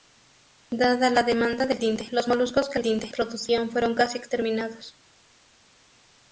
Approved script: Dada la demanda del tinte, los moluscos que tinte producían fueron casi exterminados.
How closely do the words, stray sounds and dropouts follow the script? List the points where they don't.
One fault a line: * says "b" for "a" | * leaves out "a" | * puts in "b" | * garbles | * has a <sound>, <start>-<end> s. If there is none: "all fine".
all fine